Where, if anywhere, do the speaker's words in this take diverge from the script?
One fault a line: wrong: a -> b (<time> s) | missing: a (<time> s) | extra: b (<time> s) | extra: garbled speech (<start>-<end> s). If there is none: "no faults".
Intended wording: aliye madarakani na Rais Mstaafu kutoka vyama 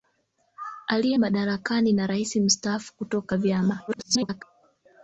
extra: garbled speech (3.9-4.4 s)